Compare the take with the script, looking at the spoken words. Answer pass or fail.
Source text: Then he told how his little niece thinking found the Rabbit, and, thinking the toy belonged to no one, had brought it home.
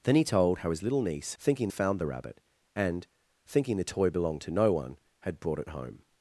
pass